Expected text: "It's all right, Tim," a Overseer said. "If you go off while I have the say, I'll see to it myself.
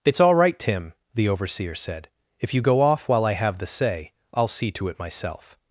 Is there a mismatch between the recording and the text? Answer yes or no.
yes